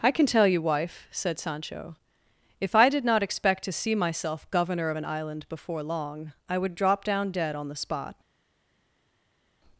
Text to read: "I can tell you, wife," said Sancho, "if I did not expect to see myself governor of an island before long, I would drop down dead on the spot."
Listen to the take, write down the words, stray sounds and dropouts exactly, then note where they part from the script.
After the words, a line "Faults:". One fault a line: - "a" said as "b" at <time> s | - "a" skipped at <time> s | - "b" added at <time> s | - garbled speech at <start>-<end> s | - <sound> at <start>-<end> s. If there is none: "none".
"I can tell you, wife," said Sancho, "if I did not expect to see myself governor of an island before long, I would drop down dead on the spot."
Faults:
none